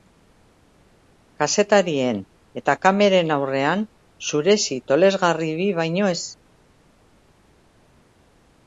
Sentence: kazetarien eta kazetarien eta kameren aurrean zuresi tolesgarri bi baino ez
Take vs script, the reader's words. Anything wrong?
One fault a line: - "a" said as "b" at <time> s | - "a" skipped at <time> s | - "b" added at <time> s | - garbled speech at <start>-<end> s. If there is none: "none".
- "kazetarien eta" skipped at 2.8 s